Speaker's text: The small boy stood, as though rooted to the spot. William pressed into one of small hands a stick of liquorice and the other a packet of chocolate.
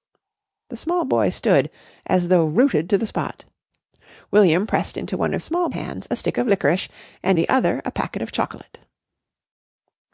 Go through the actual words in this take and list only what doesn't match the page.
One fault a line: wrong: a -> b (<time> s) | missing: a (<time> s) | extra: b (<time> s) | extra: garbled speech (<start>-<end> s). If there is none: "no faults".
no faults